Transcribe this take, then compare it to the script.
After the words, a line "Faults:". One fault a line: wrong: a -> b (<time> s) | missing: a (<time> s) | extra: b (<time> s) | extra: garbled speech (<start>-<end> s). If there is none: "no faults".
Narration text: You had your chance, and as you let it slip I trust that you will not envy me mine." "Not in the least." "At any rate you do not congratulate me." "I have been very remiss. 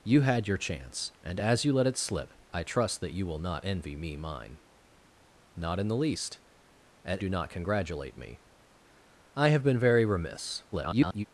You had your chance, and as you let it slip I trust that you will not envy me mine." "Not in the least." "At do not congratulate me." "I have been very remiss. [garbled]
Faults:
missing: any rate you (7.2 s)
extra: garbled speech (10.7-11.3 s)